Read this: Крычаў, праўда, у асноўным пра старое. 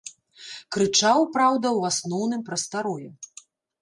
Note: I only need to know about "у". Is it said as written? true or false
true